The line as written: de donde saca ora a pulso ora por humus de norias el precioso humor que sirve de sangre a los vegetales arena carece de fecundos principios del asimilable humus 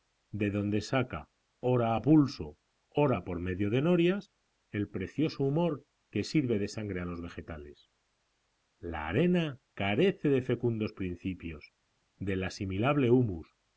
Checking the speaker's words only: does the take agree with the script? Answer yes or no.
no